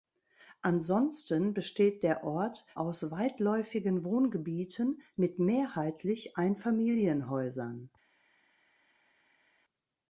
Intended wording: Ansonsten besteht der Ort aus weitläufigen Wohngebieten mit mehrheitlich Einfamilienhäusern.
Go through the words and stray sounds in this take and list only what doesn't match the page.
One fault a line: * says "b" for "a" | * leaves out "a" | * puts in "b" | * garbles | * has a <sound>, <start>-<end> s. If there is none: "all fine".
all fine